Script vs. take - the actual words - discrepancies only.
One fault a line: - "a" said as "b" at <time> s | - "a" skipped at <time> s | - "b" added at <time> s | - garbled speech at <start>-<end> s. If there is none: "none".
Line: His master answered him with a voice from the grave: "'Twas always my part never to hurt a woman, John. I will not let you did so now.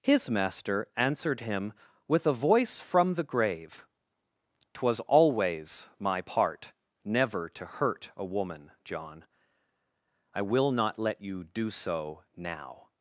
- "did" said as "do" at 11.4 s